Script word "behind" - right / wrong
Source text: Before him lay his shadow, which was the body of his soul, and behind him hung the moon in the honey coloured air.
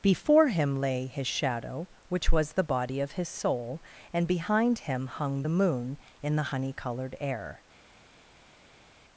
right